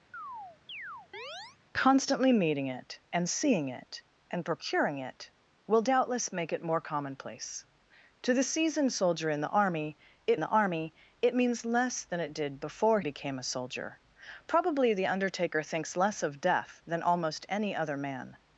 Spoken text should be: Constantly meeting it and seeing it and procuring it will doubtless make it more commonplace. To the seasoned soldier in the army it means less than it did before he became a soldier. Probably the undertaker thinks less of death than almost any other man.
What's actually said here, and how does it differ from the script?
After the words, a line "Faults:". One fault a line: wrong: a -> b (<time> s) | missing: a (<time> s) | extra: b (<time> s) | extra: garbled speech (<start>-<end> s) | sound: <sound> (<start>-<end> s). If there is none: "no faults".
Constantly meeting it and seeing it and procuring it will doubtless make it more commonplace. To the seasoned soldier in the army it the army it means less than it did before became a soldier. Probably the undertaker thinks less of death than almost any other man.
Faults:
sound: chirp (0.1-1.6 s)
extra: the army it (10.4 s)
missing: he (13.0 s)